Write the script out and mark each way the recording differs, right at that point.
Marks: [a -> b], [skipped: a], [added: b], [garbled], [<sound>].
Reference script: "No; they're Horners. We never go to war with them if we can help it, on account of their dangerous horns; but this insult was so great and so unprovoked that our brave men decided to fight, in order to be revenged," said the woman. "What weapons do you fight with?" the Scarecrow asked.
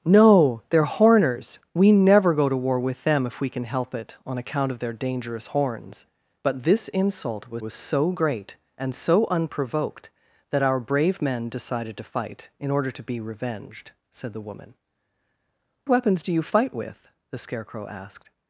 "No; they're Horners. We never go to war with them if we can help it, on account of their dangerous horns; but this insult was [added: was] so great and so unprovoked that our brave men decided to fight, in order to be revenged," said the woman. [skipped: "What] weapons do you fight with?" the Scarecrow asked.